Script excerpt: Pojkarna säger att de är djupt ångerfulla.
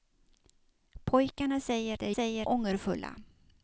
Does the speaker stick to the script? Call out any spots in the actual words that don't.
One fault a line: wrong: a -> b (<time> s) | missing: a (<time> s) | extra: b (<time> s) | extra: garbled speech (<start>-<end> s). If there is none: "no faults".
missing: att (2.0 s)
wrong: djupt -> säger (2.1 s)